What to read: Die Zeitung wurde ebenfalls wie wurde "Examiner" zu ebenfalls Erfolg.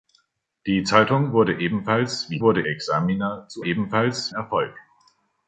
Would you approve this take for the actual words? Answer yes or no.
yes